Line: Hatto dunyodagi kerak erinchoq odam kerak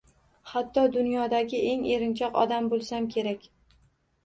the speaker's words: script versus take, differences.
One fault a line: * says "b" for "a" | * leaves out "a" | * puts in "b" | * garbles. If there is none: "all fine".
* says "eng" for "kerak"
* puts in "bo'lsam"